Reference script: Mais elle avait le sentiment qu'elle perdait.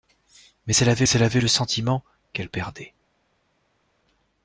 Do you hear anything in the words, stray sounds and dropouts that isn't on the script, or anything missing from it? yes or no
yes